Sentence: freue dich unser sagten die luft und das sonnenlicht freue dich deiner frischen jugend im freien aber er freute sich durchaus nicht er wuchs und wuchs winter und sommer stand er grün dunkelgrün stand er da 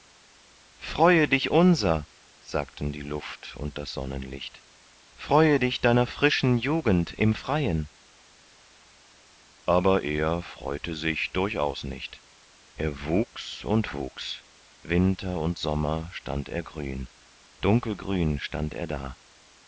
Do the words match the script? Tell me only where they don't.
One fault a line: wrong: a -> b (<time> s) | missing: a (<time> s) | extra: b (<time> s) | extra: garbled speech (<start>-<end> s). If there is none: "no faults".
no faults